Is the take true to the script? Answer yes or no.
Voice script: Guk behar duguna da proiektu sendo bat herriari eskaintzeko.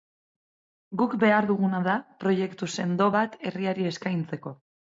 yes